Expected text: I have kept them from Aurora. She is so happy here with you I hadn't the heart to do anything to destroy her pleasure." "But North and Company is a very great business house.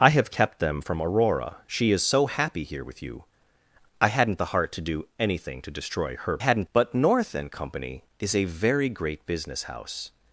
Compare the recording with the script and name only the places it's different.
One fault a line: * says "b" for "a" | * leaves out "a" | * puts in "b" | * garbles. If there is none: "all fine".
* says "hadn't" for "pleasure"